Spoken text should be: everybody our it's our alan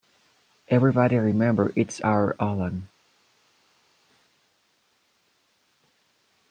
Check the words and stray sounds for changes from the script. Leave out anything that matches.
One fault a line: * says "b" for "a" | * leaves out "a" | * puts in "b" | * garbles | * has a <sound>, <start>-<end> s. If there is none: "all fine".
* says "remember" for "our"